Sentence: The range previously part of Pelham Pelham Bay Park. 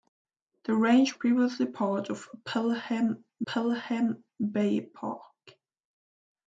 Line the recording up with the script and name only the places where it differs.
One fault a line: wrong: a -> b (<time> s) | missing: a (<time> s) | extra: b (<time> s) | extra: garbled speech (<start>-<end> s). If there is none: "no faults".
no faults